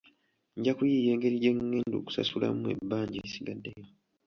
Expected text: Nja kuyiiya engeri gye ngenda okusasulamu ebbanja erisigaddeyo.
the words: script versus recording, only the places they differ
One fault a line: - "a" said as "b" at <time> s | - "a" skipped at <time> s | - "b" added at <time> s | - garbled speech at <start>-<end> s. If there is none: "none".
none